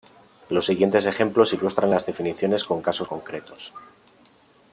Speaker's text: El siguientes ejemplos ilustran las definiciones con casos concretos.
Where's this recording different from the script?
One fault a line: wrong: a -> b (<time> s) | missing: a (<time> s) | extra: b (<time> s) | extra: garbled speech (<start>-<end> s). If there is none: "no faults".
wrong: El -> Los (0.5 s)